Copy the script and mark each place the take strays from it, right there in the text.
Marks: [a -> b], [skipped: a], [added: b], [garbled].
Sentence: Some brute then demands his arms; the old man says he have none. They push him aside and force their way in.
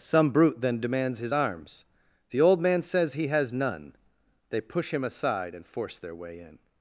Some brute then demands his arms; the old man says he [have -> has] none. They push him aside and force their way in.